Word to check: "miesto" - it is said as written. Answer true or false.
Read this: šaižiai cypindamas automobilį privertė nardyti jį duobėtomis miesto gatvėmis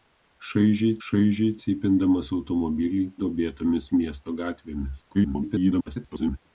true